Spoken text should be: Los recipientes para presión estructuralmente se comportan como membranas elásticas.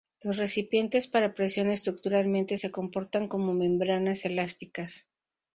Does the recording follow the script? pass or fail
pass